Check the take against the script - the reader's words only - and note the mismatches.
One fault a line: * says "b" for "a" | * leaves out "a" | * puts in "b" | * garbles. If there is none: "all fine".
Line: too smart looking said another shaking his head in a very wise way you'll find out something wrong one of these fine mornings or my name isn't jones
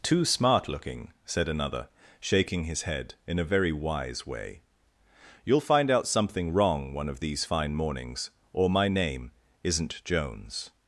all fine